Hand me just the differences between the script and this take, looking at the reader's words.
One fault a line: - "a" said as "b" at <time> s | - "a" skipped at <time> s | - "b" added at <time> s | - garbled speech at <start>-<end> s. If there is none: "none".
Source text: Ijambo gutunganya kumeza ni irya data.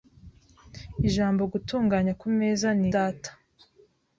- "irya" skipped at 2.9 s